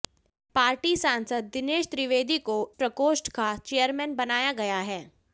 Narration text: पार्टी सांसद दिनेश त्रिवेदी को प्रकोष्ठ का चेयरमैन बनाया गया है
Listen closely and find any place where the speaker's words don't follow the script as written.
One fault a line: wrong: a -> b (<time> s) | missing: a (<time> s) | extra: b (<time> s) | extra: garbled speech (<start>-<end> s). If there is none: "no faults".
no faults